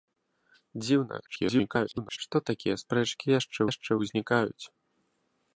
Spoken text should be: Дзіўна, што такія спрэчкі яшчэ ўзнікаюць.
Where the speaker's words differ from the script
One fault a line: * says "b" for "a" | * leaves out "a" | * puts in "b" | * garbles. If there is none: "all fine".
* garbles
* puts in "яшчэ"